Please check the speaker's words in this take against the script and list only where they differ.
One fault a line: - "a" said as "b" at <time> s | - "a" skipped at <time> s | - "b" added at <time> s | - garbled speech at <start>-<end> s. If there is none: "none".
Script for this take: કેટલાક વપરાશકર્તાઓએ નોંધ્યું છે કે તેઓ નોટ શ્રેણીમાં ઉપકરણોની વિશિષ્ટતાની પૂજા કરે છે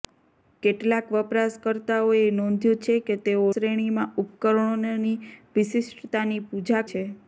- "નોટ" skipped at 3.5 s
- "કરે" skipped at 6.9 s